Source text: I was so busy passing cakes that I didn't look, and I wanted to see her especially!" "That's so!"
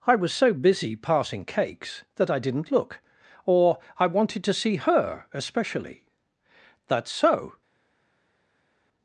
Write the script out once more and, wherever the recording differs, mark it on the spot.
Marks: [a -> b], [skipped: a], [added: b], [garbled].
I was so busy passing cakes that I didn't look, [and -> or] I wanted to see her especially!" "That's so!"